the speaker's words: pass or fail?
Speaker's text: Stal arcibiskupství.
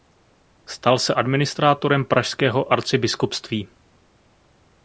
fail